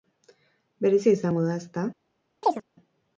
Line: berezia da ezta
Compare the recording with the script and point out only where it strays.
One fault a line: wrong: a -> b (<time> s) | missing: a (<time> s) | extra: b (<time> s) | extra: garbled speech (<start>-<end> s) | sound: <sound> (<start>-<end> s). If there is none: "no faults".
extra: izango (1.2 s)
sound: chirp (2.4-2.6 s)